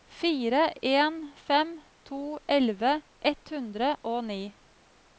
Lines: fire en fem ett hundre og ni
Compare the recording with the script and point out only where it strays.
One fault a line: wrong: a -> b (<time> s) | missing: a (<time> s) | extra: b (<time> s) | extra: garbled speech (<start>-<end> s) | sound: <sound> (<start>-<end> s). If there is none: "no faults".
extra: to elleve (2.0 s)